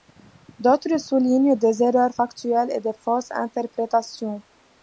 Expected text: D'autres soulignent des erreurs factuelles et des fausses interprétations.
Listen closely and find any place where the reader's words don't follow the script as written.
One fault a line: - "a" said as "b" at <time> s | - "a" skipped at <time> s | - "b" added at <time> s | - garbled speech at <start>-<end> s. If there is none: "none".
none